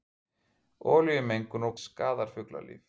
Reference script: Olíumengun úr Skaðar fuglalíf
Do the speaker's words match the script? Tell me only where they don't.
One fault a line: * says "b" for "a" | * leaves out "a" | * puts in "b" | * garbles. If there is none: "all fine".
all fine